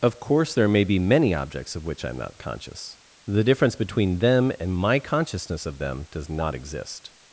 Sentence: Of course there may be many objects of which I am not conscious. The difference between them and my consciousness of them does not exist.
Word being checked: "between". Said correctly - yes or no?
yes